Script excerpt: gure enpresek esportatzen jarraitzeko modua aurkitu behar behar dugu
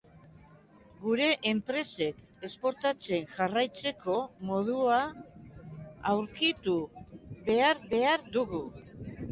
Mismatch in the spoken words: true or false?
false